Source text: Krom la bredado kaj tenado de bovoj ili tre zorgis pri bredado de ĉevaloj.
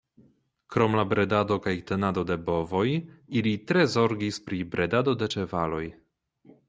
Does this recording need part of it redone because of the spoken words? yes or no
no